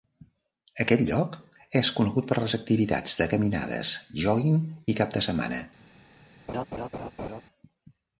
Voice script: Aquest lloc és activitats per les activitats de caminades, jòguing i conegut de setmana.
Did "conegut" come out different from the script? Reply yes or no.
yes